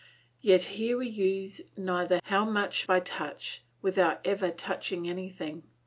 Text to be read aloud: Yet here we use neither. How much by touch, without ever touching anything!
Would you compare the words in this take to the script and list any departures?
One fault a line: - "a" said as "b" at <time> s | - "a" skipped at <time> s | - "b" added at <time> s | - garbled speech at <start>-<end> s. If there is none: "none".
none